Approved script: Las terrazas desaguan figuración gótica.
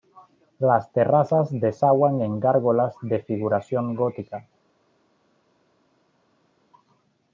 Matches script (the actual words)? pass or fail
fail